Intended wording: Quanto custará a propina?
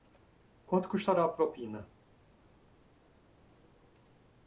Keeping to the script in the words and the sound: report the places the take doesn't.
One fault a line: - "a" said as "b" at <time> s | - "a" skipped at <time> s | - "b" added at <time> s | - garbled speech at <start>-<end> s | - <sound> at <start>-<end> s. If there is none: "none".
none